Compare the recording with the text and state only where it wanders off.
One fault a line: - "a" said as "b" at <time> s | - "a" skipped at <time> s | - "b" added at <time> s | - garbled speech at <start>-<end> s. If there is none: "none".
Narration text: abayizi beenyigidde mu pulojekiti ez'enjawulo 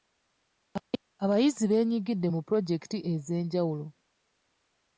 none